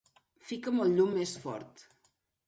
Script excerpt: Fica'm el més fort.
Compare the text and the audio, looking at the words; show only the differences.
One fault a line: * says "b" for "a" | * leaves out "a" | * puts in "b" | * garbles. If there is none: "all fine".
* puts in "llum"